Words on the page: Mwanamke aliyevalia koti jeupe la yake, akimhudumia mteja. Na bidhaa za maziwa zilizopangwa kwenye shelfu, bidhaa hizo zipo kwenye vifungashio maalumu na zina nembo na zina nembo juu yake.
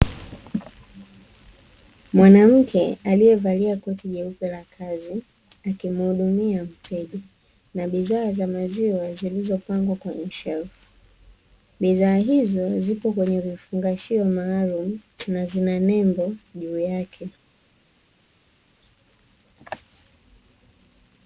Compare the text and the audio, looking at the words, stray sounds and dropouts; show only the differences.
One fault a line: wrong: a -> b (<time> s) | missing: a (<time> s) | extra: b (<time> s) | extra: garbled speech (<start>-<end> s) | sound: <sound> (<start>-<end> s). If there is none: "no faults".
wrong: yake -> kazi (4.8 s)
missing: na zina nembo (16.4 s)